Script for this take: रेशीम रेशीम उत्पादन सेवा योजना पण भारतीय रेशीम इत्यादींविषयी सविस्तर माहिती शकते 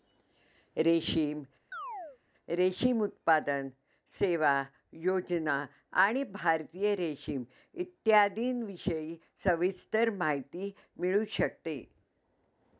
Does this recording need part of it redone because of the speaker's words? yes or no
yes